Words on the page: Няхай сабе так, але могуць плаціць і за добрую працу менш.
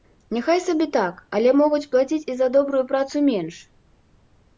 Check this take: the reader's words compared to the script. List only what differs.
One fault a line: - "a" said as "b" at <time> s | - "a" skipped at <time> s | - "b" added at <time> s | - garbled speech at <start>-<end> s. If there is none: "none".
none